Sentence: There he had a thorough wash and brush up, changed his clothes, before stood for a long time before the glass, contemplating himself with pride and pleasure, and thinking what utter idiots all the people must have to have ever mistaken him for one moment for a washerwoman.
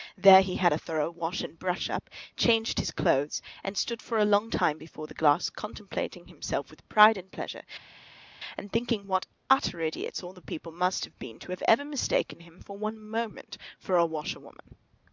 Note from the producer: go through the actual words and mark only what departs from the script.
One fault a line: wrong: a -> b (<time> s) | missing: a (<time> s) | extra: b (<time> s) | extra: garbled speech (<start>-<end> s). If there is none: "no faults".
wrong: before -> and (3.6 s)
extra: been (11.2 s)